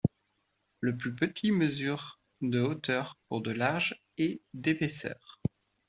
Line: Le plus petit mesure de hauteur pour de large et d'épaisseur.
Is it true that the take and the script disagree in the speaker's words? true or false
false